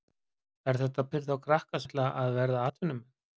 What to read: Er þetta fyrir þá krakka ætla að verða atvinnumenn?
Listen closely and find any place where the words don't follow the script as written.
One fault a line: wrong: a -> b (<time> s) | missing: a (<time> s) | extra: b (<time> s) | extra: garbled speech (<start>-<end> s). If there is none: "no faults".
no faults